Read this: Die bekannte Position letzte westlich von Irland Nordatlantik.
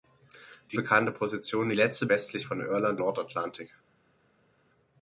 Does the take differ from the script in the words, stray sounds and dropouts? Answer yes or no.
no